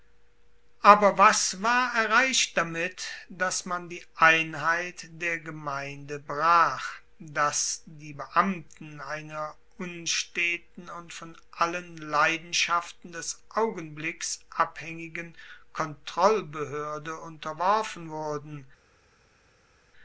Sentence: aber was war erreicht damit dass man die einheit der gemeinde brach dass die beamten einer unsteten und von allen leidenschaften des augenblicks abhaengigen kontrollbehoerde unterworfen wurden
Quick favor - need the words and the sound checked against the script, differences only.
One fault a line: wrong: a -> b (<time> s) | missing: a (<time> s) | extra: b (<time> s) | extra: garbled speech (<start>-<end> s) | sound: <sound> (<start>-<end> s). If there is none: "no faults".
no faults